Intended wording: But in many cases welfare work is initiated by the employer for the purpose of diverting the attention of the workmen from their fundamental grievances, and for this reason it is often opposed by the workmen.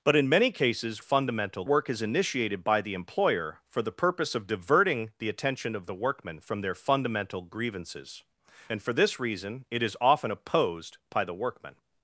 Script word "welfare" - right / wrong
wrong